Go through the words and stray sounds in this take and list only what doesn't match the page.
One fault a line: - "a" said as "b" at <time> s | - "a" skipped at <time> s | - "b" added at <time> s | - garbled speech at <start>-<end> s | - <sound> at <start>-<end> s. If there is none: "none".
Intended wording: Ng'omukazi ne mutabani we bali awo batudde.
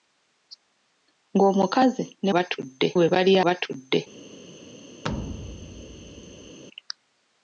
- "mutabani" said as "batudde" at 2.3 s
- "awo" skipped at 3.3 s
- thud at 5.0-6.6 s